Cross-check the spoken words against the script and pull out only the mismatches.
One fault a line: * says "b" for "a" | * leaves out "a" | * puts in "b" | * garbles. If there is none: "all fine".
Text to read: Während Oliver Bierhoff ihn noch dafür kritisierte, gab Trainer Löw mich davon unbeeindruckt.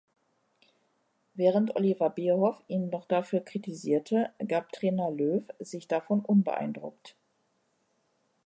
* says "sich" for "mich"